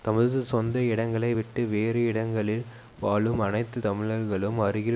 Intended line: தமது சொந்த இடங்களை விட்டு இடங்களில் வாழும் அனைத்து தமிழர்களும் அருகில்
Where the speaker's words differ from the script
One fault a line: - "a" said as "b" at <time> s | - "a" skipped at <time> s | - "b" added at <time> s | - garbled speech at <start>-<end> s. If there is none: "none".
- "வேறு" added at 1.7 s